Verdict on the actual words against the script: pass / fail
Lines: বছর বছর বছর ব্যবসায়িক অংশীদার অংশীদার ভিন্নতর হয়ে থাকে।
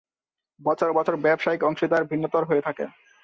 fail